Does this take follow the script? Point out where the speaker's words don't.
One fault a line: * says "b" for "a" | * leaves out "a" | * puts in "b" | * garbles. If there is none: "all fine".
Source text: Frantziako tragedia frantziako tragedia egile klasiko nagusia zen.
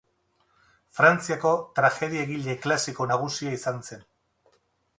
* leaves out "frantziako tragedia"
* puts in "izan"